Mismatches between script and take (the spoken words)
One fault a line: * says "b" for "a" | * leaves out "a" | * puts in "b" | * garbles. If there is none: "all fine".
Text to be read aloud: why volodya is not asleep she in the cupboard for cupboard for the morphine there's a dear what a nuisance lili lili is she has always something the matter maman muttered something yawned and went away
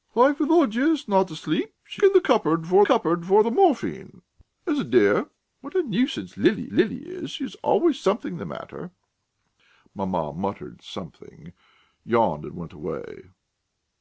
all fine